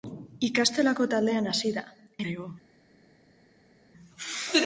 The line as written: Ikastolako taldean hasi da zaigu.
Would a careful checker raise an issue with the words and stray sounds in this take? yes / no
no